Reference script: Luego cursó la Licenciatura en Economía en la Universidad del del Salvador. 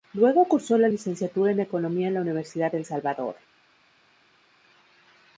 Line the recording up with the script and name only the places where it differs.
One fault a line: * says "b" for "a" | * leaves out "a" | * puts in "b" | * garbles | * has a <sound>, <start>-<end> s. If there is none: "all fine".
* leaves out "del"